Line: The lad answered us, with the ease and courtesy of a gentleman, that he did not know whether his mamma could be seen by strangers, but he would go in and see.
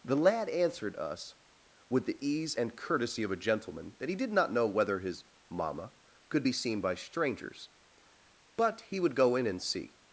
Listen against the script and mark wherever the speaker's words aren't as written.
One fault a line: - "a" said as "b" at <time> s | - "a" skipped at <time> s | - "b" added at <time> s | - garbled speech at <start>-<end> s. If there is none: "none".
none